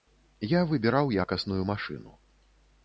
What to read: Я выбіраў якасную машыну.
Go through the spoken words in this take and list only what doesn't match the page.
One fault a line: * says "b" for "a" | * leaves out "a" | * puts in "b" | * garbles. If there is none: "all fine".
all fine